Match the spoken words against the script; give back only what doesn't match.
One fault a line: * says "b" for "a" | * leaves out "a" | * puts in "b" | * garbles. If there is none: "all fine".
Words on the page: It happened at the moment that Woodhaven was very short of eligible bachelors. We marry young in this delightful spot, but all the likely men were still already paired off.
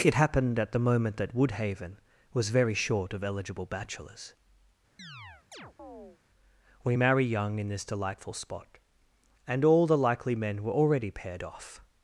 * says "and" for "but"
* leaves out "still"